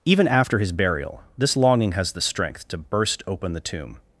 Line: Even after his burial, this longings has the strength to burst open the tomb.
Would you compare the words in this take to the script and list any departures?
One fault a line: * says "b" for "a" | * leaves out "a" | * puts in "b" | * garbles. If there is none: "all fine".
* says "longing" for "longings"